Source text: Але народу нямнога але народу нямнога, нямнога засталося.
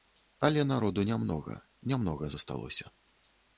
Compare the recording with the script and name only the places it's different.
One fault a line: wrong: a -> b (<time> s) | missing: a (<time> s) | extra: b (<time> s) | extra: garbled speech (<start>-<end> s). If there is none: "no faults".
missing: але народу нямнога (1.6 s)